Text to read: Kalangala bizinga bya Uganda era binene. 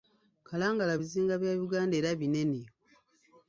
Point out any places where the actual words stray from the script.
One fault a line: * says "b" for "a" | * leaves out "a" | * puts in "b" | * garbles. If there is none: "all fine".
all fine